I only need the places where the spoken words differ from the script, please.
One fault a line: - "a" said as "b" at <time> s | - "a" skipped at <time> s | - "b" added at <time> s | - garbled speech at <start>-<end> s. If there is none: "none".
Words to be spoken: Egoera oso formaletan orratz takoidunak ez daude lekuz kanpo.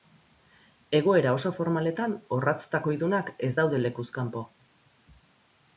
none